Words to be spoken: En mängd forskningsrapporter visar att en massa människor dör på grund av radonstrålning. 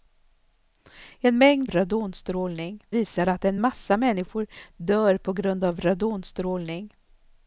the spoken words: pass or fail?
fail